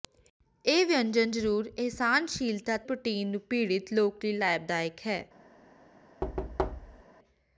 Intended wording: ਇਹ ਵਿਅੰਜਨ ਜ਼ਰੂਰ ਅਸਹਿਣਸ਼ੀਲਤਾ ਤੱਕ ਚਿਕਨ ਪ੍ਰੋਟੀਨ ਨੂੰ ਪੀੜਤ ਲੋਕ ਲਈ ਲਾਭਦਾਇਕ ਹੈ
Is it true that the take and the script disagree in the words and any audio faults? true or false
true